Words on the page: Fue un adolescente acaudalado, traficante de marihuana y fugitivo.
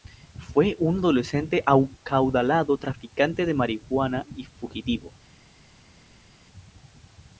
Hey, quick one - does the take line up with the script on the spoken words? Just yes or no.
yes